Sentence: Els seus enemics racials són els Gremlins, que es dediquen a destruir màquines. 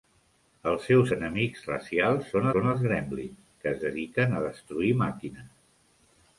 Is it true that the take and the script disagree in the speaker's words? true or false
true